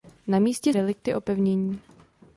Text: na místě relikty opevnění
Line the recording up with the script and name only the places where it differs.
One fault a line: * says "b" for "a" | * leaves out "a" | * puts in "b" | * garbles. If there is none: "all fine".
all fine